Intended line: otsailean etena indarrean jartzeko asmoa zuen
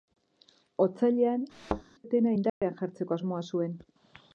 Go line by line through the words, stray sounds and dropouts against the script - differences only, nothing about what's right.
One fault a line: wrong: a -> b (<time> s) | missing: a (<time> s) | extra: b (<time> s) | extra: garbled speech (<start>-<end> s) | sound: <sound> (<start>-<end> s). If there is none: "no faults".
sound: thud (1.5-1.8 s)
sound: dropout (2.5-2.6 s)